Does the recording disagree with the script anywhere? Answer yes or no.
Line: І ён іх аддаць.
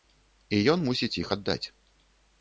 yes